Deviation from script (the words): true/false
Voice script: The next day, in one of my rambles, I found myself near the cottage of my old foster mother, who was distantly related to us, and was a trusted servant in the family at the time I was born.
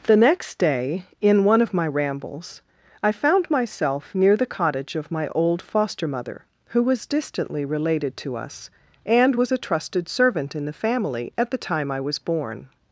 false